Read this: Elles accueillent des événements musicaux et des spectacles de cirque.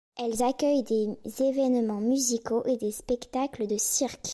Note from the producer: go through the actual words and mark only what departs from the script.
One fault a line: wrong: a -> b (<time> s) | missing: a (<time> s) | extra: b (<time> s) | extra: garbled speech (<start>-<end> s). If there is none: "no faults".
no faults